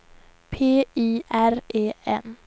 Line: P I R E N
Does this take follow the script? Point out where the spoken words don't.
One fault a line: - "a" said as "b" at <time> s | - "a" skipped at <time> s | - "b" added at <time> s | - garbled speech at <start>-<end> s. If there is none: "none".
none